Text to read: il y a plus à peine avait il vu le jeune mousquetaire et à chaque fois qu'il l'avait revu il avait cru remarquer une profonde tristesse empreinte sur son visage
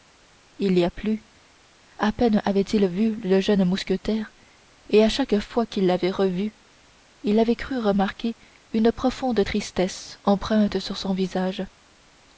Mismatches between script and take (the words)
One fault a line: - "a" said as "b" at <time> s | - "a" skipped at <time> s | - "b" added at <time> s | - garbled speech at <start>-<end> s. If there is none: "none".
none